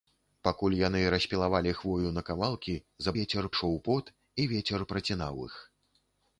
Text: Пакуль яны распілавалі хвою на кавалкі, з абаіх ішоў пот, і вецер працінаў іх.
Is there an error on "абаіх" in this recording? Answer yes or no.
yes